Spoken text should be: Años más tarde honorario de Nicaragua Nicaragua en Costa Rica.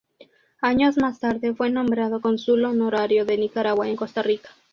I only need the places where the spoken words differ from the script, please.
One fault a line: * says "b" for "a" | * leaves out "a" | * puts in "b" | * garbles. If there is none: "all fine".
* puts in "fue nombrado Cónsul"
* leaves out "Nicaragua"